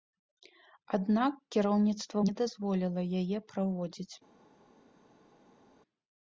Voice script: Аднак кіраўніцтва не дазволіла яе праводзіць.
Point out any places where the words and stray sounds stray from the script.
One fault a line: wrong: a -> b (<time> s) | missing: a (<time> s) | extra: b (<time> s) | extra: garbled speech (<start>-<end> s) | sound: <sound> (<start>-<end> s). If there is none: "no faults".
no faults